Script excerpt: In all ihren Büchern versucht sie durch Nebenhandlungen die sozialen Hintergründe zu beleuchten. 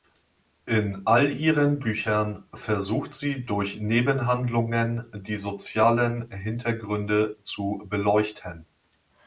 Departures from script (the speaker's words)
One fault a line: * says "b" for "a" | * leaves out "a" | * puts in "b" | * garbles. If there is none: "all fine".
all fine